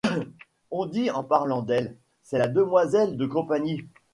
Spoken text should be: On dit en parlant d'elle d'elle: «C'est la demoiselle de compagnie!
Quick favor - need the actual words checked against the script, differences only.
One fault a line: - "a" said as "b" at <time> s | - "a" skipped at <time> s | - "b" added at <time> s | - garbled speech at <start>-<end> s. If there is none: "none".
- "d'elle" skipped at 1.9 s